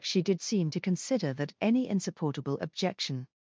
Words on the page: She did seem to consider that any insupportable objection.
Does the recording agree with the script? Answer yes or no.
yes